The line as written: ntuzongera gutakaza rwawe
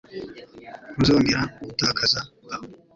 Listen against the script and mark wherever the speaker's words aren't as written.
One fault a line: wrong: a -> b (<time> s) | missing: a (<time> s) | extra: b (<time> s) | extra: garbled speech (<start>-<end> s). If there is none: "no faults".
no faults